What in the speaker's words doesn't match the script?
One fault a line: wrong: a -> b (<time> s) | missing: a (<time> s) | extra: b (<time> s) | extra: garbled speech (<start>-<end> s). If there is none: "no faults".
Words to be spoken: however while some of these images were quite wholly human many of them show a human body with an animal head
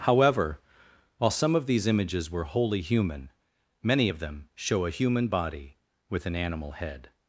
missing: quite (2.5 s)